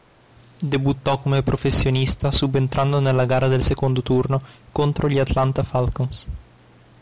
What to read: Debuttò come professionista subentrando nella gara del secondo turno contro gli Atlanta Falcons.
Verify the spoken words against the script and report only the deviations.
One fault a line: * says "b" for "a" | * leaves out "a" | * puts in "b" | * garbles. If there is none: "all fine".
all fine